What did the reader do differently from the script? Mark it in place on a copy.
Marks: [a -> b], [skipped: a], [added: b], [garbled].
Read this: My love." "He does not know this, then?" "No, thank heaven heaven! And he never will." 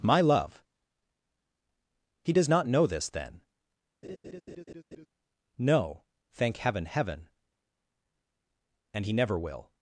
My love." "He does not know this, then?" "No, thank heaven heaven! And he never will."